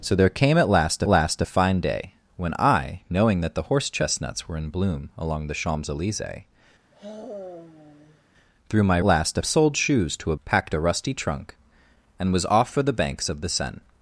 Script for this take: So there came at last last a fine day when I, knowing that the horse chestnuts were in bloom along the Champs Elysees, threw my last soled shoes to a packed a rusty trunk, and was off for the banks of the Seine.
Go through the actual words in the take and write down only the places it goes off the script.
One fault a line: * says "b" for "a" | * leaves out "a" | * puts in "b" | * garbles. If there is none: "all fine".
all fine